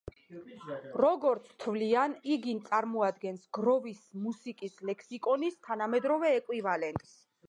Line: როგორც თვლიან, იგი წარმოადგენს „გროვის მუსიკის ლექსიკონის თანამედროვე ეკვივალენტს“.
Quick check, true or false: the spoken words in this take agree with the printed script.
true